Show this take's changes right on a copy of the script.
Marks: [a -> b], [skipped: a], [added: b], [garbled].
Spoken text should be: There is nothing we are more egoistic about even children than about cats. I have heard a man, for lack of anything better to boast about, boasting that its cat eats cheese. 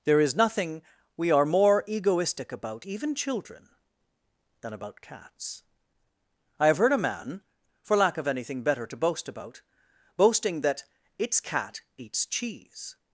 There is nothing we are more egoistic about even children than about cats. I have heard a man, for lack of anything better to boast about, boasting that its cat eats cheese.